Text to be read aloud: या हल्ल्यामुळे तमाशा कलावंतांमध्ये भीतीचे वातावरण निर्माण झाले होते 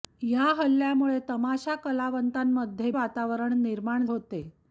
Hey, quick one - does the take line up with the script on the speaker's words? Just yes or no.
no